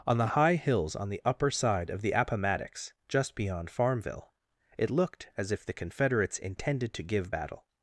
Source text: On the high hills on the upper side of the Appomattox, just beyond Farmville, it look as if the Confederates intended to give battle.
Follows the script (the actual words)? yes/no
no